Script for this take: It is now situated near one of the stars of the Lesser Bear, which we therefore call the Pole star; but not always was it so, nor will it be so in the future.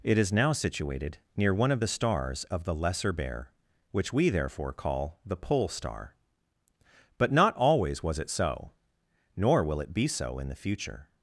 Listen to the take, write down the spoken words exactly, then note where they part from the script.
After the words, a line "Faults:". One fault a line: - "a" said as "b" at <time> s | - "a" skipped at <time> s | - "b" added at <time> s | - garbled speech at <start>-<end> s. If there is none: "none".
It is now situated near one of the stars of the Lesser Bear, which we therefore call the Pole star; but not always was it so, nor will it be so in the future.
Faults:
none